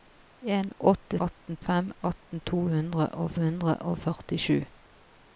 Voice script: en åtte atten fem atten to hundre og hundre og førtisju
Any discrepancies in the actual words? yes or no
no